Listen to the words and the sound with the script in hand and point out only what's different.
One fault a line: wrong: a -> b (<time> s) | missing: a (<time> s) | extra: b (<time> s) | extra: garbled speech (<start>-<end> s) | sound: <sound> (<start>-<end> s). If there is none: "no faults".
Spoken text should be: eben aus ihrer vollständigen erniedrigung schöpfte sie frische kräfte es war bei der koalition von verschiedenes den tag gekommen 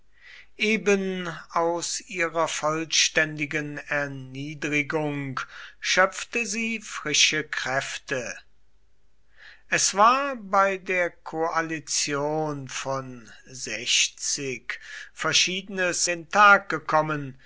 no faults